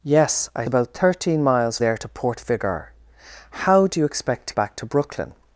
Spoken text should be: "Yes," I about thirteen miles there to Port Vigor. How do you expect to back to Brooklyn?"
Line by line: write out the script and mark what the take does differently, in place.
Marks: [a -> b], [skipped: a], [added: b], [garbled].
"Yes," I about thirteen miles there to Port Vigor. How do you expect to back to Brooklyn?"